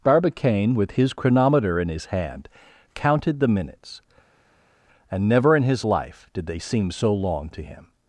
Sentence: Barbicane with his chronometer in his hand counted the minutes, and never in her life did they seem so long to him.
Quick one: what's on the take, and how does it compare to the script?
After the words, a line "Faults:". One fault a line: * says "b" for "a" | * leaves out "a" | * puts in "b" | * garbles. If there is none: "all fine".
Barbicane with his chronometer in his hand counted the minutes, and never in his life did they seem so long to him.
Faults:
* says "his" for "her"